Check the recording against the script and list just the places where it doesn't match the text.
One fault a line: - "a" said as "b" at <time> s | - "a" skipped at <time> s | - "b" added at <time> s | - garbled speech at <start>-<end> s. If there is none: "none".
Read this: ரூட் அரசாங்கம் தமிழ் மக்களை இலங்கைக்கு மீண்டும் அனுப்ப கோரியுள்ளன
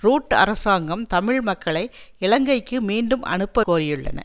none